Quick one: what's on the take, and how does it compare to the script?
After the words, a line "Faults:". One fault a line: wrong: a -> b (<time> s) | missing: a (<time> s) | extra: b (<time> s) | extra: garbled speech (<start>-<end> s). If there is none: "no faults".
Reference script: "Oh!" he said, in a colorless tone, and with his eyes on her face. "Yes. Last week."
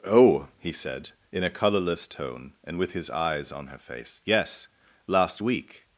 "Oh!" he said, in a colorless tone, and with his eyes on her face. "Yes. Last week."
Faults:
no faults